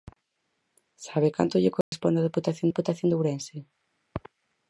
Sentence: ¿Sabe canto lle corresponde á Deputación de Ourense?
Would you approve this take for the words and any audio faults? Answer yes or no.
no